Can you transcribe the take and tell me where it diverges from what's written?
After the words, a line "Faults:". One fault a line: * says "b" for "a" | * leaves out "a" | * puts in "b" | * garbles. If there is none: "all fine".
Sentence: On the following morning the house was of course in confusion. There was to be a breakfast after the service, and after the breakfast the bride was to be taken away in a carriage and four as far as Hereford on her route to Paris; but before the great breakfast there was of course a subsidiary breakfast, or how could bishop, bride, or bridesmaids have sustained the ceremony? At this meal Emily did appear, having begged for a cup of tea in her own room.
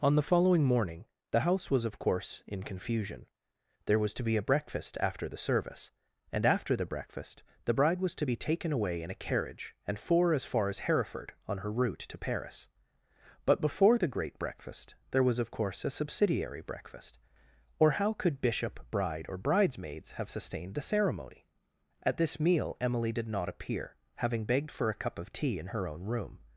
On the following morning the house was of course in confusion. There was to be a breakfast after the service, and after the breakfast the bride was to be taken away in a carriage and four as far as Hereford on her route to Paris; but before the great breakfast there was of course a subsidiary breakfast, or how could bishop, bride, or bridesmaids have sustained the ceremony? At this meal Emily did not appear, having begged for a cup of tea in her own room.
Faults:
* puts in "not"